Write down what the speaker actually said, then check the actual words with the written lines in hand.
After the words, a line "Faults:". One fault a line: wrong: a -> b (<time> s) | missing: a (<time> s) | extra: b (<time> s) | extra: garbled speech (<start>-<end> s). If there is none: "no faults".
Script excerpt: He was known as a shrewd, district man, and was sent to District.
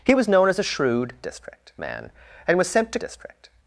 He was known as a shrewd, district man, and was sent to District.
Faults:
no faults